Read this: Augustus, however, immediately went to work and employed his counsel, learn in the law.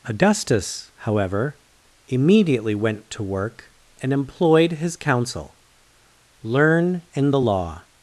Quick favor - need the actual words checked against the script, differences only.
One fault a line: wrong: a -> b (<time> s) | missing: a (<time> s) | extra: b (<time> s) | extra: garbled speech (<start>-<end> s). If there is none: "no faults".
no faults